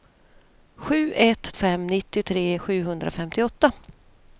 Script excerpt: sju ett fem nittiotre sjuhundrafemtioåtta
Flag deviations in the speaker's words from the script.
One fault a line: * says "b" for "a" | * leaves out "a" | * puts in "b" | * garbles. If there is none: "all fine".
all fine